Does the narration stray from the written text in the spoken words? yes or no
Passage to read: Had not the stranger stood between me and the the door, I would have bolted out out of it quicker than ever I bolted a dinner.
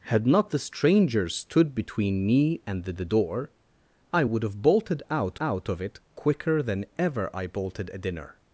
no